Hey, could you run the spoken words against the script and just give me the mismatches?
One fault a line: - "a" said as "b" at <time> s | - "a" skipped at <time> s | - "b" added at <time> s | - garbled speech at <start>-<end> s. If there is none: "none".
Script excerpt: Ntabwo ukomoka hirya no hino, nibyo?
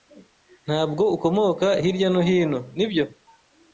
none